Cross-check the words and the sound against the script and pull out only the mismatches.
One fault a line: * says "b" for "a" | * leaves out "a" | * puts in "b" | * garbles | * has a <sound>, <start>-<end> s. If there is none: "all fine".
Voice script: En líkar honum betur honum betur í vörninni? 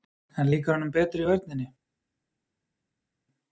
* leaves out "honum betur"